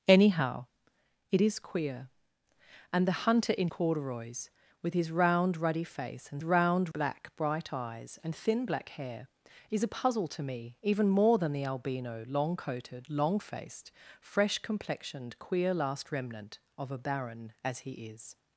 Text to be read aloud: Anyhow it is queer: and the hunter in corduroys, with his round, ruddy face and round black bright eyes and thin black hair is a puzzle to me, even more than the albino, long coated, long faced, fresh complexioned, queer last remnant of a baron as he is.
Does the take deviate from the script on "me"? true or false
false